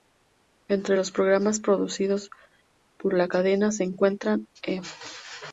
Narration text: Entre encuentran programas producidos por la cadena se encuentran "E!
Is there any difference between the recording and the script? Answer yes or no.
yes